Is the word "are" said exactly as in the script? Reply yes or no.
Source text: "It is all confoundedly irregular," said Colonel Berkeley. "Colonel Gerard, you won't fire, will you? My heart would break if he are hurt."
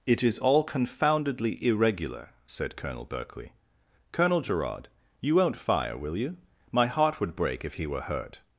no